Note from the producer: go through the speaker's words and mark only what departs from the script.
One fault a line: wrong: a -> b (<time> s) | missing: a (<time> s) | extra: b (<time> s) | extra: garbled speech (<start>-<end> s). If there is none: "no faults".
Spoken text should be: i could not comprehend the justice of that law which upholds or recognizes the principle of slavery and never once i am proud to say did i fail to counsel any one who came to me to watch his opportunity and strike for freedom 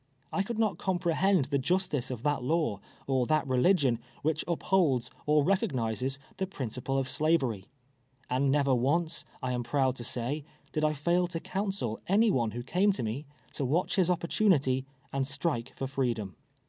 extra: or that religion (3.0 s)